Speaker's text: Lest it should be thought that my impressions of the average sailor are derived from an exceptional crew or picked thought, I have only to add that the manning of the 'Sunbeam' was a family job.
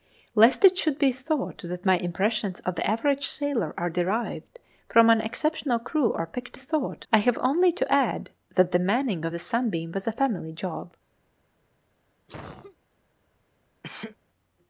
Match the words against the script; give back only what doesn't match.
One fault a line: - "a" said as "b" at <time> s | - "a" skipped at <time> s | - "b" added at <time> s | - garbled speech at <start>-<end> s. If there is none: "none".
none